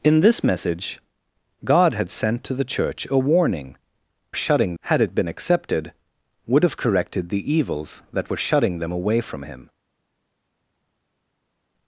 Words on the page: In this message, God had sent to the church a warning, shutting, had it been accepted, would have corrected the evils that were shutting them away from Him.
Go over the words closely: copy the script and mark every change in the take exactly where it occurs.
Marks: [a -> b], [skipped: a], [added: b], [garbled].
In this message, God had sent to the church a warning, shutting, had it been accepted, would have corrected the evils that were shutting them away from Him.